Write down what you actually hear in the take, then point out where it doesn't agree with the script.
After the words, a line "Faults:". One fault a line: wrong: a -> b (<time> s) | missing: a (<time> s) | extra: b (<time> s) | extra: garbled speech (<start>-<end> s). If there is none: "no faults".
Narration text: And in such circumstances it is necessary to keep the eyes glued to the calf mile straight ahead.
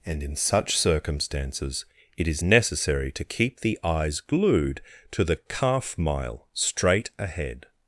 And in such circumstances it is necessary to keep the eyes glued to the calf mile straight ahead.
Faults:
no faults